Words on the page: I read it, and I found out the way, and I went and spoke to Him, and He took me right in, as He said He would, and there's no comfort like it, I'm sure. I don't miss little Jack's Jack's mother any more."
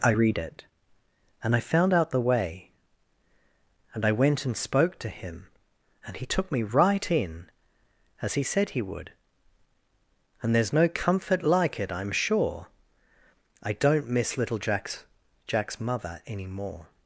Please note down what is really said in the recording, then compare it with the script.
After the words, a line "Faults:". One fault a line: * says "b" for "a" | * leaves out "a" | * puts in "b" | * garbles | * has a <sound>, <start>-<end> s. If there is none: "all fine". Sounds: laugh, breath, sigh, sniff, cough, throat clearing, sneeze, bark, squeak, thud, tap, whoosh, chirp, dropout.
I read it, and I found out the way, and I went and spoke to Him, and He took me right in, as He said He would, and there's no comfort like it, I'm sure. I don't miss little Jack's Jack's mother any more."
Faults:
all fine